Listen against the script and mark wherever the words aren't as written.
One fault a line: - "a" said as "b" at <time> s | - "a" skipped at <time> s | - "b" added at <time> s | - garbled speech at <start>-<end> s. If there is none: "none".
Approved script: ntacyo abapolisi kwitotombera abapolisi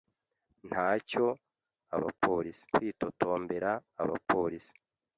none